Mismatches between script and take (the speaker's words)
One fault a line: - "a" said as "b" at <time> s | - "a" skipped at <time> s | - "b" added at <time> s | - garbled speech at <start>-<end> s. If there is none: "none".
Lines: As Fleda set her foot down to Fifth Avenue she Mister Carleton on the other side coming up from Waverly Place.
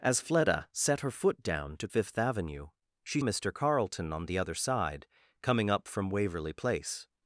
none